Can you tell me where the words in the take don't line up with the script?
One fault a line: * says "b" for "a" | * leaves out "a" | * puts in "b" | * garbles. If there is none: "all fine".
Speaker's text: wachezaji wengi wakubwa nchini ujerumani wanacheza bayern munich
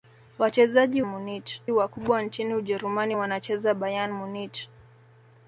* says "munich" for "wengi"